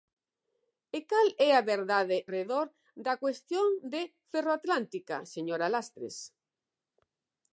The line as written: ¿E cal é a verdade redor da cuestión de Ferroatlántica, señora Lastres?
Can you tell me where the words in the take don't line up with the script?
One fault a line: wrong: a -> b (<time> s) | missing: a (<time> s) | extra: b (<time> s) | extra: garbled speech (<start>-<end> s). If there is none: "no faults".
no faults